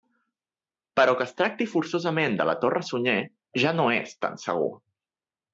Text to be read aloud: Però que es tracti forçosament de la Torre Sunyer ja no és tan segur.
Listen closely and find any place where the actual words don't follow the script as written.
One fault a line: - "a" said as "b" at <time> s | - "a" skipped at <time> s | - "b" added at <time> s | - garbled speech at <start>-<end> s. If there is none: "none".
none